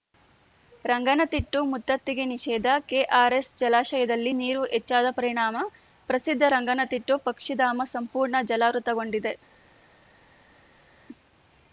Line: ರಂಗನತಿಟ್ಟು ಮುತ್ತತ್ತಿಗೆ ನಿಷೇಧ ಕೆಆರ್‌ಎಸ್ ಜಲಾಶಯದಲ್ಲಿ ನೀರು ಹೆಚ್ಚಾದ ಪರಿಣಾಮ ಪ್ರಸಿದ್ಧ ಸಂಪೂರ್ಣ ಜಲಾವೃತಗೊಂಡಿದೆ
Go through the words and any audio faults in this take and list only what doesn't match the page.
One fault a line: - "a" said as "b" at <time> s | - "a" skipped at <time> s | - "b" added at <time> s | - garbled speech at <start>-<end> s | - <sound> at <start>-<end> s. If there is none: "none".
- "ರಂಗನತಿಟ್ಟು ಪಕ್ಷಿಧಾಮ" added at 6.5 s